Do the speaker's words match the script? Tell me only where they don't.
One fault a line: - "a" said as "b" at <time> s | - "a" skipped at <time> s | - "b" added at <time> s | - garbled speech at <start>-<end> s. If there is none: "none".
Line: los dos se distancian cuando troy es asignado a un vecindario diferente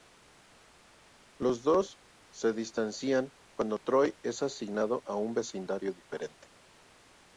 none